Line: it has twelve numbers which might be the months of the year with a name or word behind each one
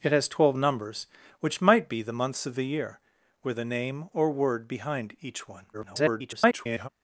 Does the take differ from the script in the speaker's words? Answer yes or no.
yes